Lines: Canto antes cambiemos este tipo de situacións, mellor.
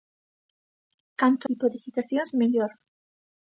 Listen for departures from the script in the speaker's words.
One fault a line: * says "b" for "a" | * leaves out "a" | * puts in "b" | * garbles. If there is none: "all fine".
* leaves out "antes cambiemos este"